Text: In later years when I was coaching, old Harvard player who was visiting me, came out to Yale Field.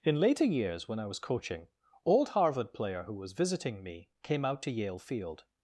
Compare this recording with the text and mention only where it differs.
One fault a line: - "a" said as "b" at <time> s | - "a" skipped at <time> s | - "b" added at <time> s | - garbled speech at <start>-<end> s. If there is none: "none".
none